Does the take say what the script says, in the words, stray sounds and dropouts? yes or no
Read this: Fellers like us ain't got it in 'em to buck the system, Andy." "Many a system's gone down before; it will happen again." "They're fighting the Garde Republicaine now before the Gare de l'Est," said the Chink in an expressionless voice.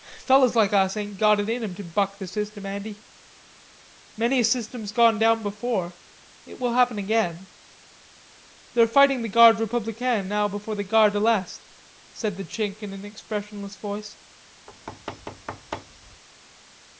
no